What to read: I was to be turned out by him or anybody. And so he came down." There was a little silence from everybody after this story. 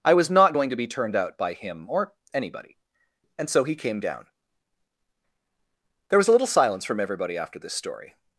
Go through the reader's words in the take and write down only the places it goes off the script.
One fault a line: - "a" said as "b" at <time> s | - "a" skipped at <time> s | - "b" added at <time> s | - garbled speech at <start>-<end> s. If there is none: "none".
- "not going" added at 0.3 s